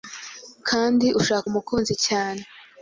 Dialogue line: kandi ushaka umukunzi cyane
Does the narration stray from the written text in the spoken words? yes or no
no